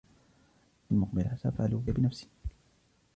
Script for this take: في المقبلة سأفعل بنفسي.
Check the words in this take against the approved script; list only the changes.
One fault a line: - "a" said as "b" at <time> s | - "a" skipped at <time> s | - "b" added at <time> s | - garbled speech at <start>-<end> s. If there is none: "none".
none